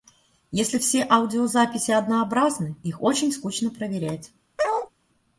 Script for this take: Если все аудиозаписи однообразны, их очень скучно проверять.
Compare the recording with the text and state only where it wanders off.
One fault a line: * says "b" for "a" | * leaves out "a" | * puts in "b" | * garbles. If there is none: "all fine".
all fine